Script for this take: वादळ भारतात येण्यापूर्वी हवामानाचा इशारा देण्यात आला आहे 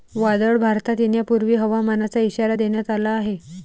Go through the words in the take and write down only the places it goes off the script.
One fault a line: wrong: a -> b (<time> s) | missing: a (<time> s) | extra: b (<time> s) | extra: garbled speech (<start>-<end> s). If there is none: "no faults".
no faults